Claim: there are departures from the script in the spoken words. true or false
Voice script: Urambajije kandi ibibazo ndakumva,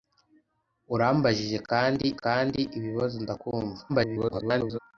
true